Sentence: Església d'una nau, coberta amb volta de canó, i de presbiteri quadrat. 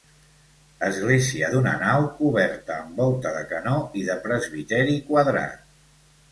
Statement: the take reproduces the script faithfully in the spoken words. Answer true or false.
true